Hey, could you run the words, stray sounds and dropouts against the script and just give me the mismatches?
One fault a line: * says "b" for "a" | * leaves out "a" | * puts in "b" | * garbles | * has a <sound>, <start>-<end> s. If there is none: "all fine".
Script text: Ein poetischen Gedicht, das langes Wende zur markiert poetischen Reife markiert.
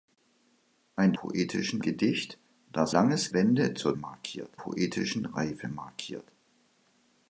all fine